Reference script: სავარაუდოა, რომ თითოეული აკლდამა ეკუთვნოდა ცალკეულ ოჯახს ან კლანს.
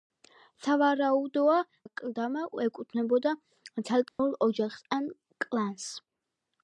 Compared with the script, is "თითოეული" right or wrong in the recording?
wrong